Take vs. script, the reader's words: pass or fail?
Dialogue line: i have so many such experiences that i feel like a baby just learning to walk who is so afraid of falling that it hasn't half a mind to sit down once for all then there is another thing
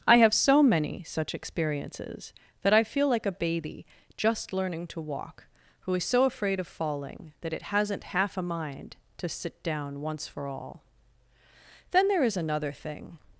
pass